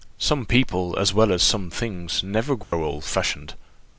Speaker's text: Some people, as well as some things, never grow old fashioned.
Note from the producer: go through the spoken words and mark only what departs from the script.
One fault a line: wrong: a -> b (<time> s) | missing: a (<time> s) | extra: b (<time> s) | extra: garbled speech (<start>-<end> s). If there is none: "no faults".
no faults